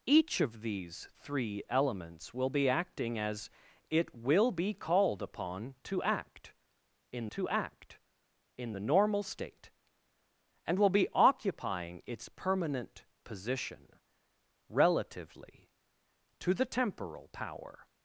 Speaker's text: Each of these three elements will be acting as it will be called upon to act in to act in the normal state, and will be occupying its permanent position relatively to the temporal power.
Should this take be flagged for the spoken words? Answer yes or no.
no